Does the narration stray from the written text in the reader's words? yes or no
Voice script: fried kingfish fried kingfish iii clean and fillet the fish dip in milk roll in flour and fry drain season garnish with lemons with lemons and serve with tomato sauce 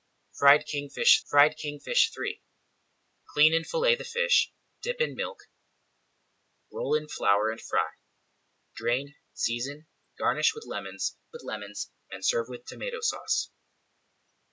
no